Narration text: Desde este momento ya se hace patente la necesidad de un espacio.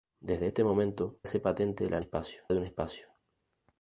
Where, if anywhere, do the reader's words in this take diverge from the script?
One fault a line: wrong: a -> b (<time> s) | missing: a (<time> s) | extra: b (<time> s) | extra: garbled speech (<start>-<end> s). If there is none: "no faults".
missing: ya se (1.2 s)
wrong: necesidad -> espacio (2.0 s)